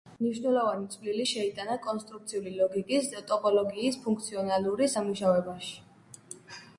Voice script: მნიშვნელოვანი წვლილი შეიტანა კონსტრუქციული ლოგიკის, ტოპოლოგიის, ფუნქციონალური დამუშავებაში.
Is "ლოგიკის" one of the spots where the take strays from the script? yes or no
no